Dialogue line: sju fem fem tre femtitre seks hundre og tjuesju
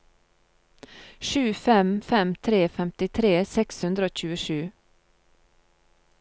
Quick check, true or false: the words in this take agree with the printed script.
true